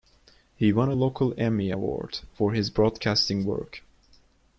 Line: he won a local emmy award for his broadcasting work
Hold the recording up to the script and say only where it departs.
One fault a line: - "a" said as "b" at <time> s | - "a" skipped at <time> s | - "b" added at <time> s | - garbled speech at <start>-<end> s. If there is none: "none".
none